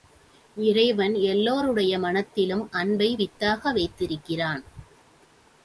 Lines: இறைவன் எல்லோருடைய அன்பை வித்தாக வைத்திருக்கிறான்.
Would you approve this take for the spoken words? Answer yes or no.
no